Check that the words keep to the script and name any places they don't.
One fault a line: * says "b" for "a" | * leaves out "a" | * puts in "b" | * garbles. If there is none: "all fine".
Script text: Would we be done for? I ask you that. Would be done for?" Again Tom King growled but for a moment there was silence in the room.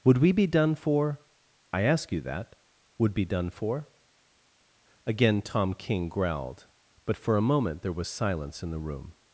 all fine